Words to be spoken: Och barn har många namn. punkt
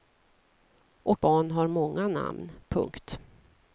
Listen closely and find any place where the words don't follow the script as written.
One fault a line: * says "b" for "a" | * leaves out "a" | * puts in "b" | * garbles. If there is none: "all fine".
all fine